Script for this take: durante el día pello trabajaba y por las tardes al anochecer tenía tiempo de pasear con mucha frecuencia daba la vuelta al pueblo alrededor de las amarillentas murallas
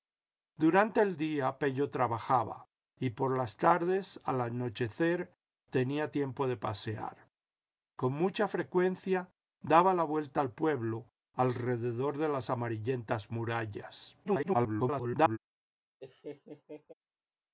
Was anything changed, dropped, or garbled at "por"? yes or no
no